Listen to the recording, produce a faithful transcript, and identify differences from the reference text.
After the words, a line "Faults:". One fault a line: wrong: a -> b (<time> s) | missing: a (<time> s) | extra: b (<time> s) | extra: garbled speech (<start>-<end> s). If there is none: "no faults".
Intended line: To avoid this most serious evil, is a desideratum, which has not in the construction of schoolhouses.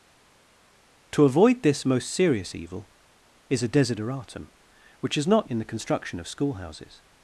To avoid this most serious evil, is a desideratum, which has not in the construction of schoolhouses.
Faults:
no faults